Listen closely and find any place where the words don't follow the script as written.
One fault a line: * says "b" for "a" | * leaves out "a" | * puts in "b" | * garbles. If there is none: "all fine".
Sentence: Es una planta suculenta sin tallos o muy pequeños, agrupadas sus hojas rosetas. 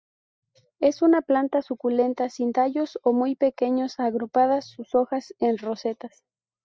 * puts in "en"